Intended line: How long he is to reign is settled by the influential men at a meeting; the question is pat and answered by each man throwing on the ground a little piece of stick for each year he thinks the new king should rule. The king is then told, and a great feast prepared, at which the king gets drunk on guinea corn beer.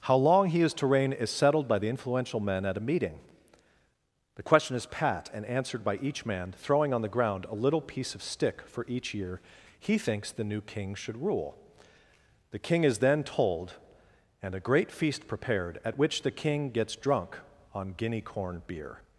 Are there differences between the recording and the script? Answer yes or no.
no